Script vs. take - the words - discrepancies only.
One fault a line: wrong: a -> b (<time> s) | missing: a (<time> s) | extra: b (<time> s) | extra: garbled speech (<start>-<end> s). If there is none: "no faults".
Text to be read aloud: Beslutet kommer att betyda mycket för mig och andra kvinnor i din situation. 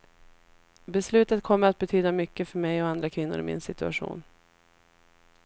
wrong: din -> min (3.4 s)